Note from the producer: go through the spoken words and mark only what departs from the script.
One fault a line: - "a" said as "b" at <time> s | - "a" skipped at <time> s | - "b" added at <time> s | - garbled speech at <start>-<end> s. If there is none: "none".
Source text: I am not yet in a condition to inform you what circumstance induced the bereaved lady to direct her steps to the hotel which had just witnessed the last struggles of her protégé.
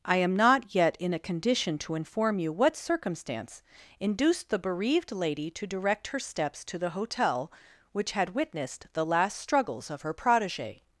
- "just" skipped at 8.3 s